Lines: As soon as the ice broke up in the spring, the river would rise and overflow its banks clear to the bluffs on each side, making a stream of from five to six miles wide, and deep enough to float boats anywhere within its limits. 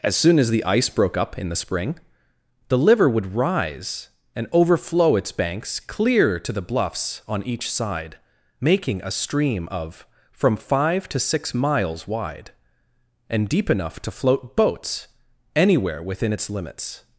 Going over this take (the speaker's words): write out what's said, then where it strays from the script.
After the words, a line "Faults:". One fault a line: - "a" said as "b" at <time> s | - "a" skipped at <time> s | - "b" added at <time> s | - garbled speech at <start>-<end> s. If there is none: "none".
As soon as the ice broke up in the spring, the liver would rise and overflow its banks clear to the bluffs on each side, making a stream of from five to six miles wide, and deep enough to float boats anywhere within its limits.
Faults:
- "river" said as "liver" at 2.8 s